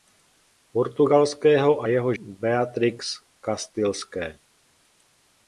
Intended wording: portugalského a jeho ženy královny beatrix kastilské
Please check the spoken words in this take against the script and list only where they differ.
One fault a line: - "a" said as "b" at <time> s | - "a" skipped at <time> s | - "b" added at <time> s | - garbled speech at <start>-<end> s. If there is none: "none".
- "ženy královny" skipped at 2.1 s